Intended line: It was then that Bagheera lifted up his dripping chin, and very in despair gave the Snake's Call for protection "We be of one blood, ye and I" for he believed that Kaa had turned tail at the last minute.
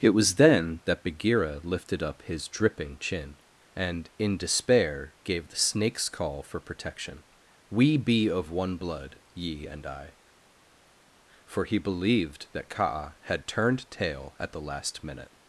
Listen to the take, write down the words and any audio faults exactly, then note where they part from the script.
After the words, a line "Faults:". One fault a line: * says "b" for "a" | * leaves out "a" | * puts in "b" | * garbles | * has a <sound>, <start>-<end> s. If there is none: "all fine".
It was then that Bagheera lifted up his dripping chin, and in despair gave the Snake's Call for protection "We be of one blood, ye and I" for he believed that Kaa had turned tail at the last minute.
Faults:
* leaves out "very"